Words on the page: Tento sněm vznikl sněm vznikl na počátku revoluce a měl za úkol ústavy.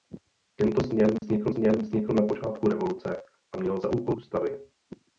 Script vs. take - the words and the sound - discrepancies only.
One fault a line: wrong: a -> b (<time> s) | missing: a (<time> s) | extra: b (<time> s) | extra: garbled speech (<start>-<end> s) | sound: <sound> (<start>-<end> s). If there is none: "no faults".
sound: dropout (1.2-1.2 s)